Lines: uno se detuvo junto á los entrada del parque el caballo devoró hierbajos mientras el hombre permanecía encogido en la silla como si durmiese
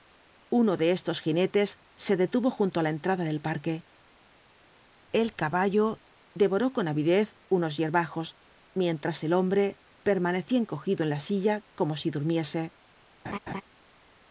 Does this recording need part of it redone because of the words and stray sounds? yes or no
yes